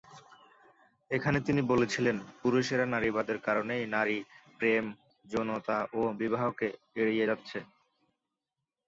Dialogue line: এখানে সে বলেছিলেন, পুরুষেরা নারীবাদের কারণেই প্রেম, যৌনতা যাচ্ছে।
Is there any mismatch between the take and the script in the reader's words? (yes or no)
yes